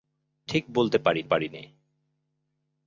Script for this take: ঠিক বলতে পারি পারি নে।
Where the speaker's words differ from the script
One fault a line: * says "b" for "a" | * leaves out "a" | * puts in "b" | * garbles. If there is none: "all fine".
all fine